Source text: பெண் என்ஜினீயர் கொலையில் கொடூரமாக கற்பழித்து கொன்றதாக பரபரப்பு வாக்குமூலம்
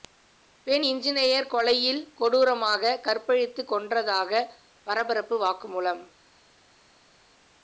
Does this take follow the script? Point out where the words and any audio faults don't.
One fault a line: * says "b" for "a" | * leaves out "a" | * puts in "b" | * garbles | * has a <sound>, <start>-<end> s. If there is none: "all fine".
all fine